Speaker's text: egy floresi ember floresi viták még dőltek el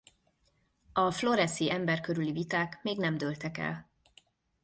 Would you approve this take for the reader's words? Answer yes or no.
no